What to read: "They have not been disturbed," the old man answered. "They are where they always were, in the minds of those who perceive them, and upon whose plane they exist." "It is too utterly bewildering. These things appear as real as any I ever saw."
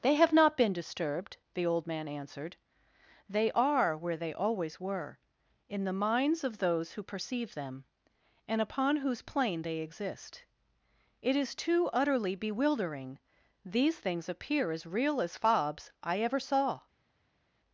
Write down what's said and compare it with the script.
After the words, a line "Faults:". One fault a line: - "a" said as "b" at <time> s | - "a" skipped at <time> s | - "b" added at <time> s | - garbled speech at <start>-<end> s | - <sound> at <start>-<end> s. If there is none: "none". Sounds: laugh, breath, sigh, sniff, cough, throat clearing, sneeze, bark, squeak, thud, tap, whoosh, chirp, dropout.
"They have not been disturbed," the old man answered. "They are where they always were, in the minds of those who perceive them, and upon whose plane they exist." "It is too utterly bewildering. These things appear as real as fobs I ever saw."
Faults:
- "any" said as "fobs" at 15.4 s